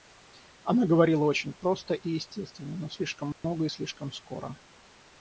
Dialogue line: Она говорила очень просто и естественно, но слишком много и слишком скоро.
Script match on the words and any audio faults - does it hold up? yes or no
no